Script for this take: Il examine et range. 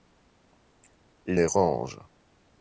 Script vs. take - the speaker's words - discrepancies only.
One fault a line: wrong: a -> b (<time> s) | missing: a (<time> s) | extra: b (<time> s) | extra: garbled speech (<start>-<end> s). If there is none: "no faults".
missing: examine (1.4 s)